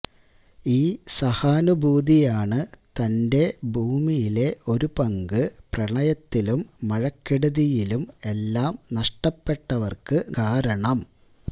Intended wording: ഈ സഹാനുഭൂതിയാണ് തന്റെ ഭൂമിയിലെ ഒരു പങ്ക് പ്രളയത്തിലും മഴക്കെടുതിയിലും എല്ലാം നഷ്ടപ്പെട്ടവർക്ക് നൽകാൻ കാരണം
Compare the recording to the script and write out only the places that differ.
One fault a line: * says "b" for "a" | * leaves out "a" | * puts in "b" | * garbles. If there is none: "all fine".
* leaves out "നൽകാൻ"